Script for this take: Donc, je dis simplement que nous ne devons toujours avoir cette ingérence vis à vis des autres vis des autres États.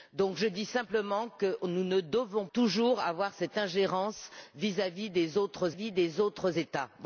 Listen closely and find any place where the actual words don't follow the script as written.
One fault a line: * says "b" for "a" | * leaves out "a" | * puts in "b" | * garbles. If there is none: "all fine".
all fine